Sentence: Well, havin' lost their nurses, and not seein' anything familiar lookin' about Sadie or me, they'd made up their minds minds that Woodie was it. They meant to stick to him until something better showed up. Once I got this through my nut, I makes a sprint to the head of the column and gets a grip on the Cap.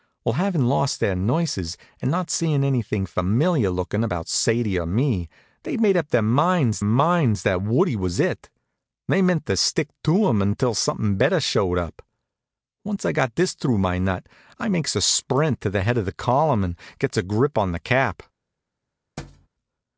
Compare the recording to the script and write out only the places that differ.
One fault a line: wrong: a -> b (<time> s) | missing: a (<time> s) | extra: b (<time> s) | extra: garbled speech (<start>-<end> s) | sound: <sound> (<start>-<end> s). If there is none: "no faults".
sound: thud (19.2-19.5 s)